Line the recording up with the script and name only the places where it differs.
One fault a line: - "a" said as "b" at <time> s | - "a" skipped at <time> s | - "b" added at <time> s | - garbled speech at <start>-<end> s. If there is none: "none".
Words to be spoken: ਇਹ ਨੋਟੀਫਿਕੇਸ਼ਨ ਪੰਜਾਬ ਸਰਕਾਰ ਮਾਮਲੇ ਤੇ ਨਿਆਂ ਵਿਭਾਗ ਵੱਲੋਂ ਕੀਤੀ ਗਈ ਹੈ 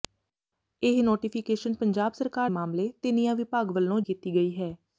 none